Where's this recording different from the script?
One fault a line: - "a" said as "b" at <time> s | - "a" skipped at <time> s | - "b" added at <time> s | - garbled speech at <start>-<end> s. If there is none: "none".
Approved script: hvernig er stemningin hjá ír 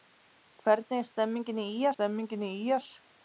- "stemningin hjá" added at 1.9 s